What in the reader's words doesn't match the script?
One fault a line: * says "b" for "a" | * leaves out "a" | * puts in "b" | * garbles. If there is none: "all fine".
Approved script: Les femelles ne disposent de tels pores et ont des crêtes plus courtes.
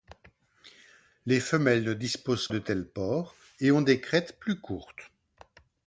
all fine